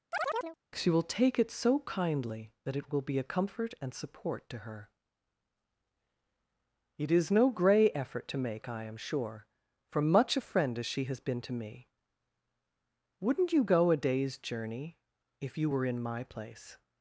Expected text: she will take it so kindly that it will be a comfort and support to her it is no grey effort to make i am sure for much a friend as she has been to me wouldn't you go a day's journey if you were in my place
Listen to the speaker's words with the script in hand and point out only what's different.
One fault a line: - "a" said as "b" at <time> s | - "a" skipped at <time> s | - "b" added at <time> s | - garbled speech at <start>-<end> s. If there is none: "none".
none